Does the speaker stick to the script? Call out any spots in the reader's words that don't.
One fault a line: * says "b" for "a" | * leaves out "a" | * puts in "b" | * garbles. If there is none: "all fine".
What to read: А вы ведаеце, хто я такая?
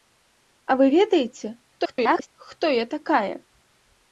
* garbles